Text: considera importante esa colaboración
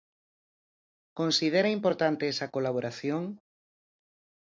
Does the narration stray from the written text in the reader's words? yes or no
no